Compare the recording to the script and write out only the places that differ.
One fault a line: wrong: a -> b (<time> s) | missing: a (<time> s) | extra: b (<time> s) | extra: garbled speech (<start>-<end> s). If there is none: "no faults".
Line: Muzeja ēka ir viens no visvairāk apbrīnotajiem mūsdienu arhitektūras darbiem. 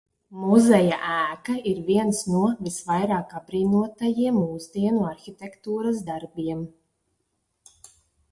no faults